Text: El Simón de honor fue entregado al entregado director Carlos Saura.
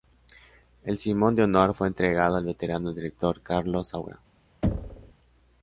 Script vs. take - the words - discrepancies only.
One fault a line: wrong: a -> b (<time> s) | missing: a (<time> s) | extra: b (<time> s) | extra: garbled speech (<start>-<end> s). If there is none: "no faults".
wrong: entregado -> veterano (2.5 s)